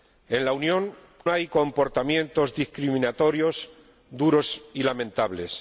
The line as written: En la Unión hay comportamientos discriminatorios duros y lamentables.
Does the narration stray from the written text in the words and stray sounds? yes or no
no